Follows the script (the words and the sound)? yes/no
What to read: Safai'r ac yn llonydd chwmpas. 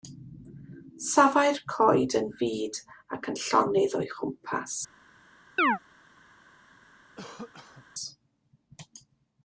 no